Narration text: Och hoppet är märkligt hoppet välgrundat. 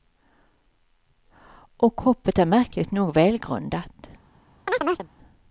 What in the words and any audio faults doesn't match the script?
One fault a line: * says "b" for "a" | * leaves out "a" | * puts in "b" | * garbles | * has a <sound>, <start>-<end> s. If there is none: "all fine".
* says "nog" for "hoppet"
* has a chirp, 4.7-5.1 s